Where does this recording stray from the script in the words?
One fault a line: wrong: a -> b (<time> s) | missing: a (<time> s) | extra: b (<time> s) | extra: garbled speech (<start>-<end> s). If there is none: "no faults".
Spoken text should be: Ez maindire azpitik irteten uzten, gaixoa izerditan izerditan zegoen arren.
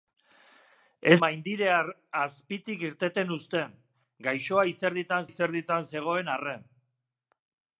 no faults